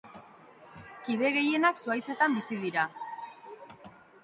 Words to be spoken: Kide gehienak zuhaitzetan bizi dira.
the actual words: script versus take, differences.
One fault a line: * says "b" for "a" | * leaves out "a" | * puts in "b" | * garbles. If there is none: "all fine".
all fine